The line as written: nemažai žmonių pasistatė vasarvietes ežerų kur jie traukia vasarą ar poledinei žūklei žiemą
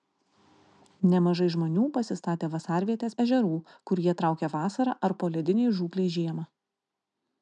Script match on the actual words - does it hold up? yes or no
yes